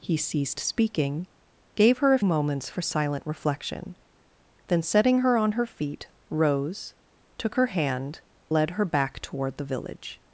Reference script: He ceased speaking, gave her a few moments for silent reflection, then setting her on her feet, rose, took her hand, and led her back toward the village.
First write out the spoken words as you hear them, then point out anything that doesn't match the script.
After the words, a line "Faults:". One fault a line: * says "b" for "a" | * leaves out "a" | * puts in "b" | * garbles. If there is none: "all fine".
He ceased speaking, gave her a moments for silent reflection, then setting her on her feet, rose, took her hand, led her back toward the village.
Faults:
* leaves out "few"
* leaves out "and"